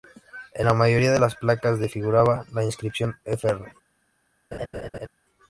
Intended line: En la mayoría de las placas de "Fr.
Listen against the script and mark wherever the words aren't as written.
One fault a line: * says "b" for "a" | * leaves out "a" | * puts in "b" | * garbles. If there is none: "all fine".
* puts in "figuraba la inscripción"